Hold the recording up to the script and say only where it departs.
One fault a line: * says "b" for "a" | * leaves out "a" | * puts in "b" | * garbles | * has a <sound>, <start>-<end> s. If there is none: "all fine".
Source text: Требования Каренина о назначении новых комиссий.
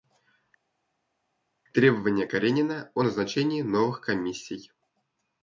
all fine